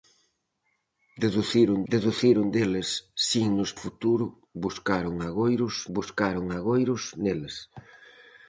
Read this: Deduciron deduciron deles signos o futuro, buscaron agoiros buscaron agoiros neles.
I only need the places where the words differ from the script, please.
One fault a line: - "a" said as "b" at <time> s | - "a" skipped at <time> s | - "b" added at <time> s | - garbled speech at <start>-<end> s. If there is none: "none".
none